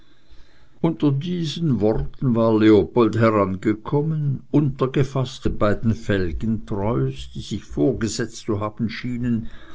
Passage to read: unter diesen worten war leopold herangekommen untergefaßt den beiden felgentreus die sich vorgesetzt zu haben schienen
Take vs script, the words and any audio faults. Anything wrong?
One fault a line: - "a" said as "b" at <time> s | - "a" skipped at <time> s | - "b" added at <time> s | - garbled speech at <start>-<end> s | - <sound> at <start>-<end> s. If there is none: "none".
none